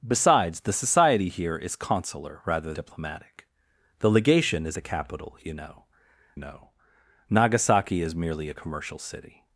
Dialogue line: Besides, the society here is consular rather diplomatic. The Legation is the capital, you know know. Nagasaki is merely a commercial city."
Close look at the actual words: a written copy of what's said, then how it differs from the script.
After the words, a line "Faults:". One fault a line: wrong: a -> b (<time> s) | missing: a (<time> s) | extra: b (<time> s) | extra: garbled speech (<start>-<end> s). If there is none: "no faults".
Besides, the society here is consular rather diplomatic. The Legation is the capital, you know know. Nagasaki is merely a commercial city."
Faults:
no faults